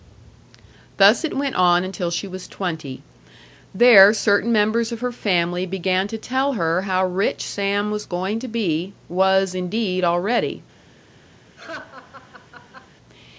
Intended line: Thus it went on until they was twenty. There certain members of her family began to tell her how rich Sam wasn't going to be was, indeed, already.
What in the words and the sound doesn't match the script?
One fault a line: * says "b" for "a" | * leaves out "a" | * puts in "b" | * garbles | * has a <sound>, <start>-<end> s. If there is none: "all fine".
* says "she" for "they"
* says "was" for "wasn't"
* has a laugh, 11.6-12.9 s